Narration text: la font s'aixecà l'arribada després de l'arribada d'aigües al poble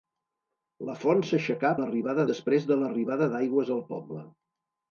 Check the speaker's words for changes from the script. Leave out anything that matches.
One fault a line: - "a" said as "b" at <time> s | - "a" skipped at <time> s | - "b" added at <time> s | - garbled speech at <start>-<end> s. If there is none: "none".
none